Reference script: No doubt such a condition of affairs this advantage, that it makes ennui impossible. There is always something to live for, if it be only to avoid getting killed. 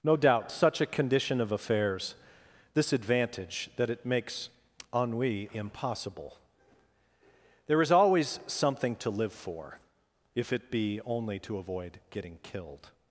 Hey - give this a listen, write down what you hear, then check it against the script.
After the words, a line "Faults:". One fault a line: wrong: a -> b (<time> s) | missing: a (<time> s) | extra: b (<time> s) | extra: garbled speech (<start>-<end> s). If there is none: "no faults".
No doubt such a condition of affairs this advantage, that it makes ennui impossible. There is always something to live for, if it be only to avoid getting killed.
Faults:
no faults